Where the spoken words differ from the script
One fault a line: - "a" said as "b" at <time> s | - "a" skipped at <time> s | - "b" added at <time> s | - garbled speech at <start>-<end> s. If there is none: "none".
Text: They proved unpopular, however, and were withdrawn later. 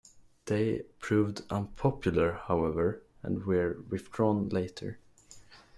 none